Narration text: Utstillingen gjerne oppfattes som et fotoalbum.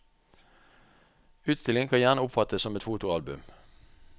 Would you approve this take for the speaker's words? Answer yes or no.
no